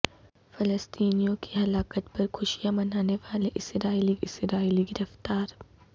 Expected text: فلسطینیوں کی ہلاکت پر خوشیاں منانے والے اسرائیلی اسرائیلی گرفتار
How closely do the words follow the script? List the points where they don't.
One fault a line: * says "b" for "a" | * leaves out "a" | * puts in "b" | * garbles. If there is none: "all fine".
all fine